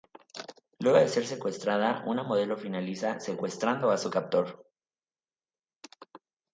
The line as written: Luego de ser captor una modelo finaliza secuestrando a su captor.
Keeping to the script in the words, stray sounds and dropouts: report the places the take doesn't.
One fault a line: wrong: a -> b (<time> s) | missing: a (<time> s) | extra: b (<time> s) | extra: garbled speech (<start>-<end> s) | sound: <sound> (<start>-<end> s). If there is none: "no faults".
wrong: captor -> secuestrada (1.3 s)